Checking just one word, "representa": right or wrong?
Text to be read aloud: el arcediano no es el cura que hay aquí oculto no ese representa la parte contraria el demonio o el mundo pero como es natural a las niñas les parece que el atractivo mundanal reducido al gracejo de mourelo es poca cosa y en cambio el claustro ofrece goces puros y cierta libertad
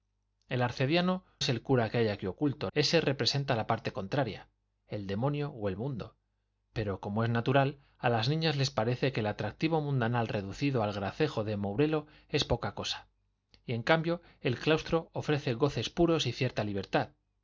right